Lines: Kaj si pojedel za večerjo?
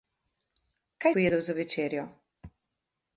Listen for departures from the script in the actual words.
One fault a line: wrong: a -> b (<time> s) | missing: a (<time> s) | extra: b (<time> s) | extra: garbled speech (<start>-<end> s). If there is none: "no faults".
missing: si (1.1 s)